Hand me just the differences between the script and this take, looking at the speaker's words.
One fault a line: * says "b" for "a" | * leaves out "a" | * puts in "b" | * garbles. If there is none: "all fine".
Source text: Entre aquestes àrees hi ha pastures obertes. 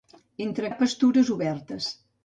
* leaves out "aquestes àrees hi"